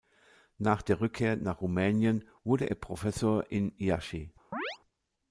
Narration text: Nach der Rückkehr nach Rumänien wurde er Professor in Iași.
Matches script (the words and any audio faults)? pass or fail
fail